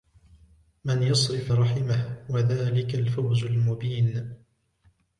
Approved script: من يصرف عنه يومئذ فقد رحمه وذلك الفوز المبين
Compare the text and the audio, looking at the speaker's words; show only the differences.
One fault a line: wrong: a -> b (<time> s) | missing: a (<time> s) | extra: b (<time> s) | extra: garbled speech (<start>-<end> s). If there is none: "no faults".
missing: عنه يومئذ فقد (1.5 s)